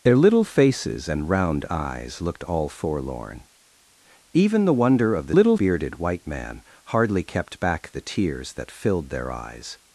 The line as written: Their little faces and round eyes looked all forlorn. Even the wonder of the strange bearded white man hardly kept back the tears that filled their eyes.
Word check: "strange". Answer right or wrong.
wrong